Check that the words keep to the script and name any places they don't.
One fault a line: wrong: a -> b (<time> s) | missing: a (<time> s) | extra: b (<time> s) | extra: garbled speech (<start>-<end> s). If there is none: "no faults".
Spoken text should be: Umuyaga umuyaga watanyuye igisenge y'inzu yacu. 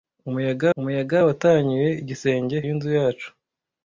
no faults